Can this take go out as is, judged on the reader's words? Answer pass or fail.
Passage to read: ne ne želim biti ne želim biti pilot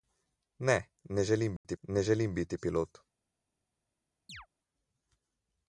pass